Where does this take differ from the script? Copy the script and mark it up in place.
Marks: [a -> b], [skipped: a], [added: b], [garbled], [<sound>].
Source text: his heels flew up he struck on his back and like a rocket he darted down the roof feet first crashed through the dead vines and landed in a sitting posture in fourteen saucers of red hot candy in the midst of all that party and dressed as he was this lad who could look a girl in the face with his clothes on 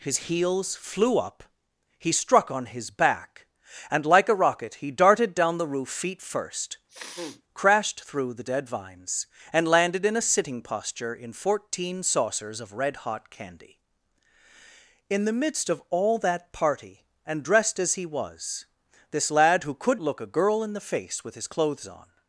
his heels flew up he struck on his back and like a rocket he darted down the roof feet first [sniff] crashed through the dead vines and landed in a sitting posture in fourteen saucers of red hot candy in the midst of all that party and dressed as he was this lad who could look a girl in the face with his clothes on